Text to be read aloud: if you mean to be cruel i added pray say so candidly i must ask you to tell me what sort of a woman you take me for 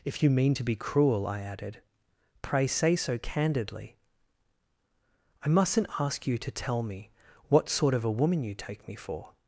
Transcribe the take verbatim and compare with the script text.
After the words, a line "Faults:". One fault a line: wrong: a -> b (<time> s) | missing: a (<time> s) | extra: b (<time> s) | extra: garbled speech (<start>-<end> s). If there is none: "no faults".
if you mean to be cruel i added pray say so candidly i mustn't ask you to tell me what sort of a woman you take me for
Faults:
wrong: must -> mustn't (5.5 s)